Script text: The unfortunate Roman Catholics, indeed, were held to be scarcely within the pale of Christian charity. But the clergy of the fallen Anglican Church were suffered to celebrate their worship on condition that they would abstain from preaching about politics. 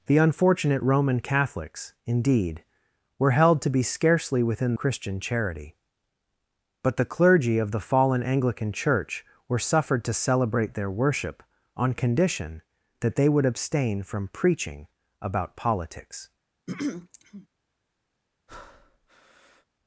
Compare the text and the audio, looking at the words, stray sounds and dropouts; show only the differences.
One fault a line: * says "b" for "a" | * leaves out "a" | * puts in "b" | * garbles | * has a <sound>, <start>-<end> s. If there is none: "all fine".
* leaves out "the pale of"
* has a throat clearing, 16.7-17.5 s
* has a breath, 18.5-19.7 s